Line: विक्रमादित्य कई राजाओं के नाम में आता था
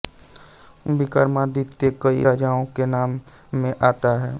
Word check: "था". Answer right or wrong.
wrong